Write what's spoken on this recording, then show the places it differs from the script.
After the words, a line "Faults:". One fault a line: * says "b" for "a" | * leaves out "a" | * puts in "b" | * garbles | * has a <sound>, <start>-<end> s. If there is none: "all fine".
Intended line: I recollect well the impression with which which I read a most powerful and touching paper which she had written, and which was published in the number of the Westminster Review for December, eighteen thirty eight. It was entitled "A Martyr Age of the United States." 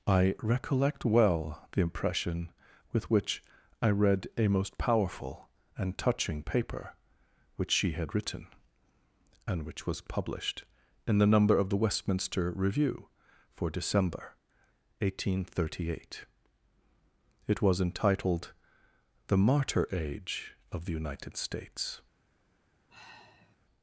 I recollect well the impression with which I read a most powerful and touching paper which she had written, and which was published in the number of the Westminster Review for December, eighteen thirty eight. It was entitled "The Martyr Age of the United States."
Faults:
* leaves out "which"
* says "The" for "A"
* has a sigh, 22.9-23.6 s